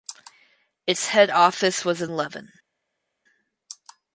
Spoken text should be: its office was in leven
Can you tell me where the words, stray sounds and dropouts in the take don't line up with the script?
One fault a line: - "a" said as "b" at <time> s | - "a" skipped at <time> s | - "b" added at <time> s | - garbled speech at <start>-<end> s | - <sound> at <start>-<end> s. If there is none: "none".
- "head" added at 1.1 s